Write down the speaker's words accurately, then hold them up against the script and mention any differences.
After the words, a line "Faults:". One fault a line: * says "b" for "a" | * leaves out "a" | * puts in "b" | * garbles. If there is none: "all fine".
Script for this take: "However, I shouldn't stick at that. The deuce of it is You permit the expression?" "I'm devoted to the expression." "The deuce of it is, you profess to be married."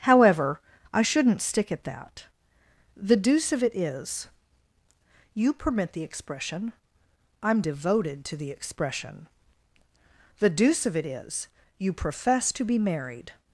"However, I shouldn't stick at that. The deuce of it is You permit the expression?" "I'm devoted to the expression." "The deuce of it is, you profess to be married."
Faults:
all fine